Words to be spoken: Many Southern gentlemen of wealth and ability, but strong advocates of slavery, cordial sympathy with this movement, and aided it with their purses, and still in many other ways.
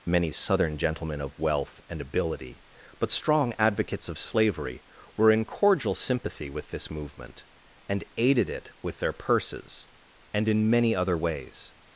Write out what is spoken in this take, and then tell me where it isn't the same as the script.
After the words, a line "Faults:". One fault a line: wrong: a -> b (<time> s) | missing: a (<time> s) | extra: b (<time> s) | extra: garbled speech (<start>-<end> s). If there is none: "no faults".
Many Southern gentlemen of wealth and ability, but strong advocates of slavery, were in cordial sympathy with this movement, and aided it with their purses, and in many other ways.
Faults:
extra: were in (5.2 s)
missing: still (10.5 s)